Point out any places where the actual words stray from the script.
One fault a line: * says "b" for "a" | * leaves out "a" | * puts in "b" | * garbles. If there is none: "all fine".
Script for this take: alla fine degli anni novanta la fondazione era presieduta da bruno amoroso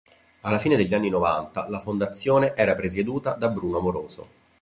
all fine